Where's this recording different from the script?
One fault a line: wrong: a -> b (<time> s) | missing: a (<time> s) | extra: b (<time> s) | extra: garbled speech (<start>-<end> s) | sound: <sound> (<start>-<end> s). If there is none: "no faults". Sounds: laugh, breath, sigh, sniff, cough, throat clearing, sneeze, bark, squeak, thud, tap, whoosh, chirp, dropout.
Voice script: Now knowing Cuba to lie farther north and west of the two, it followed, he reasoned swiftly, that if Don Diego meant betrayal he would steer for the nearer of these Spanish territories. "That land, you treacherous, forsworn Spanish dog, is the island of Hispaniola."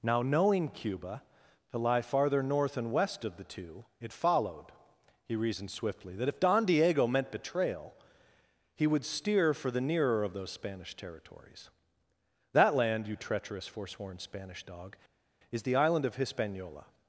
wrong: these -> those (10.3 s)